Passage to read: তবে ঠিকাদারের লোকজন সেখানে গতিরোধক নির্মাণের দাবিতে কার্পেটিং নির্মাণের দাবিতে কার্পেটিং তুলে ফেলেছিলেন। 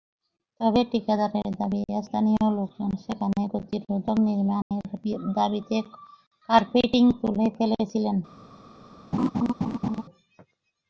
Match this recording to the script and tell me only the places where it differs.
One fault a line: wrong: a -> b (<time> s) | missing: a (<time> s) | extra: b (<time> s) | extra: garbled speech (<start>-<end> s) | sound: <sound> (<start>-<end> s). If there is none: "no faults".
extra: দাবি স্থানীয় (1.6 s)
sound: dropout (4.6-4.7 s)
missing: নির্মাণের দাবিতে কার্পেটিং (7.0 s)
sound: laugh (9.1-10.0 s)